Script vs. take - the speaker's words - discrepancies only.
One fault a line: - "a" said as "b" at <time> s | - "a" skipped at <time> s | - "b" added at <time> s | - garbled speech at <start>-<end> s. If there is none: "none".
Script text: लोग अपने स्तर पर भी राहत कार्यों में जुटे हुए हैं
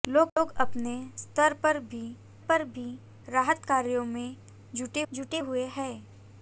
- "पर भी" added at 2.4 s
- "जुटे" added at 5.1 s